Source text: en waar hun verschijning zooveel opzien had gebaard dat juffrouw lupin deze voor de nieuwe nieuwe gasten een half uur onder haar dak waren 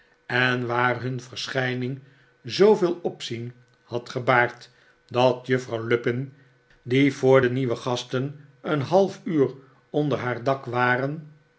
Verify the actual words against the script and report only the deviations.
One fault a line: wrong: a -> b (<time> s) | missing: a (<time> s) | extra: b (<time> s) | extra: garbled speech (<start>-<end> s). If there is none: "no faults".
wrong: deze -> die (6.8 s)
missing: nieuwe (7.8 s)